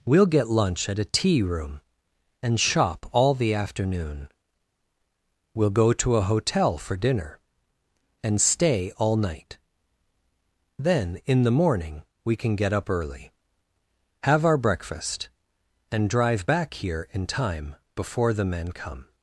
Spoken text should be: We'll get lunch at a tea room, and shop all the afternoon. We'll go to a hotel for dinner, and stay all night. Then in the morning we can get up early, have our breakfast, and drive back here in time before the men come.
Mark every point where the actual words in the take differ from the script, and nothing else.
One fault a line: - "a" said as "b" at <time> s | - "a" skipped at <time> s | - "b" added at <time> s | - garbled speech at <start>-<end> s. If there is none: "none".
none